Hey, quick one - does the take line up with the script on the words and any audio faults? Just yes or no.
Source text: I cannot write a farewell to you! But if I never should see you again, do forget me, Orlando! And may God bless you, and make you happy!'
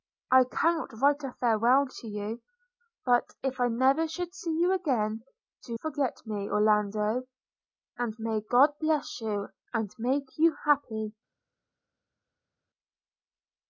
yes